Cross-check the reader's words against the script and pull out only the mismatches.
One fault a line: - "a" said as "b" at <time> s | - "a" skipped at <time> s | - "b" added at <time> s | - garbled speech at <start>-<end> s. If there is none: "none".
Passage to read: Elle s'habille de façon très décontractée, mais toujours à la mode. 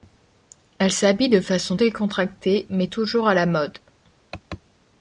- "très" skipped at 1.8 s